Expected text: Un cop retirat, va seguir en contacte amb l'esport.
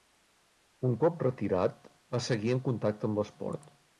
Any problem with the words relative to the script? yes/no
no